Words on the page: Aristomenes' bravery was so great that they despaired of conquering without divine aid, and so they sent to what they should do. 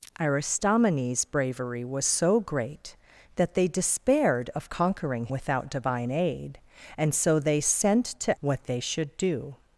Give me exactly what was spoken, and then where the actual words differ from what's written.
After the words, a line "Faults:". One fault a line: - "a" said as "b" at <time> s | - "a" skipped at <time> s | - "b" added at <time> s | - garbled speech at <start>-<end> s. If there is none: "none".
Aristomenes' bravery was so great that they despaired of conquering without divine aid, and so they sent to what they should do.
Faults:
none